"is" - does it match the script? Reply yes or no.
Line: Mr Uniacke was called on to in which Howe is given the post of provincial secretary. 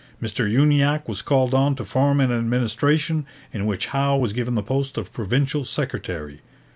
no